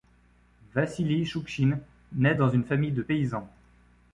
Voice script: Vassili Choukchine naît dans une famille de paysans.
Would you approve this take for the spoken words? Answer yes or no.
yes